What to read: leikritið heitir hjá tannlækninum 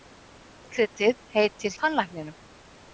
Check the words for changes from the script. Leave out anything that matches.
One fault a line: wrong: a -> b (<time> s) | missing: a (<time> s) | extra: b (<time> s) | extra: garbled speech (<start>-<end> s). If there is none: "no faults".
missing: hjá (1.7 s)